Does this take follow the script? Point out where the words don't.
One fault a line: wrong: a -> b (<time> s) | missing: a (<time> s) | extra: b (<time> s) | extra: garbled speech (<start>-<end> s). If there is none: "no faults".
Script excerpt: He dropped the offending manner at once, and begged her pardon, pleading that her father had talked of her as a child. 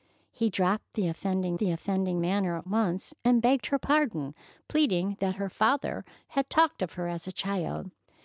extra: the offending (1.6 s)